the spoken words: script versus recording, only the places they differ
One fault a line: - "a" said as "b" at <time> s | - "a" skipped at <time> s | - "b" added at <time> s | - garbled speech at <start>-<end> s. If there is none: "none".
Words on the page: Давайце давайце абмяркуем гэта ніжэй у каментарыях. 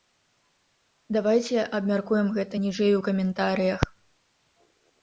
- "давайце" skipped at 1.7 s